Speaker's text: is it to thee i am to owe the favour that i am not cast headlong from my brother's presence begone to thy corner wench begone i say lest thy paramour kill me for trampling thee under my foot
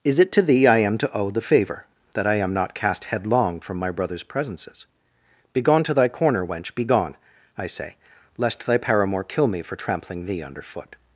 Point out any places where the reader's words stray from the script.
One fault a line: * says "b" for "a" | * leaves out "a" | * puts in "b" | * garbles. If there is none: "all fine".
* says "presences" for "presence"
* leaves out "my"